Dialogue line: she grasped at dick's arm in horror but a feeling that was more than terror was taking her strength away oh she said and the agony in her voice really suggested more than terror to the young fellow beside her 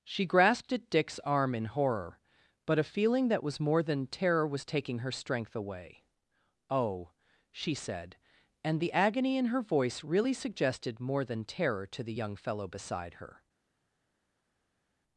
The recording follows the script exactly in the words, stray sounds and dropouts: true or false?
true